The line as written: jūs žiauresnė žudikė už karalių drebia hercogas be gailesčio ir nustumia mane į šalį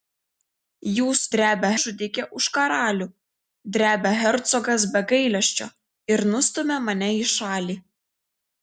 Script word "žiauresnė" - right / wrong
wrong